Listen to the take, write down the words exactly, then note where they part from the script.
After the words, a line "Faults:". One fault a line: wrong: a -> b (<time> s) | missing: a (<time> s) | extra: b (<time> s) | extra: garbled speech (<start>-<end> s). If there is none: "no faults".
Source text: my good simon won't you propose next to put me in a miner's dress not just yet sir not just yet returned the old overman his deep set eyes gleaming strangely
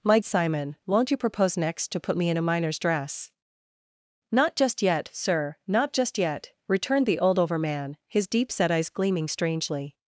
my simon won't you propose next to put me in a miner's dress not just yet sir not just yet returned the old overman his deep set eyes gleaming strangely
Faults:
missing: good (0.2 s)